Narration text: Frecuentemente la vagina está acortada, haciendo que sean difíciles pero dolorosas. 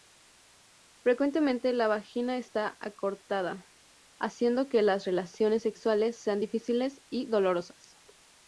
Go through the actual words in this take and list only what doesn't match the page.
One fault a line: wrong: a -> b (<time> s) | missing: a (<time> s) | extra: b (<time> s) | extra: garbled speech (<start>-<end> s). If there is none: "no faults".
extra: las relaciones sexuales (4.8 s)
wrong: pero -> y (7.1 s)